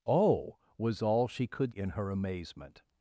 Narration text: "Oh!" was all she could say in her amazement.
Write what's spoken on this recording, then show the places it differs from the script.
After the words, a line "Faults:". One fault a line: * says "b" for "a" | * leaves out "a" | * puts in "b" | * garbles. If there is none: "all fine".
"Oh!" was all she could in her amazement.
Faults:
* leaves out "say"